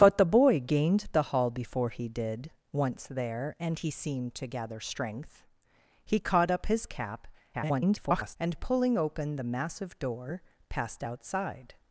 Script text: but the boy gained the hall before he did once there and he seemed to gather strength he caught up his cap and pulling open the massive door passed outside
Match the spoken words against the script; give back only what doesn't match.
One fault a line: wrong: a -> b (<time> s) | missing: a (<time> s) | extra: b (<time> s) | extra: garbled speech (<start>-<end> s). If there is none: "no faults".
extra: garbled speech (7.5-8.4 s)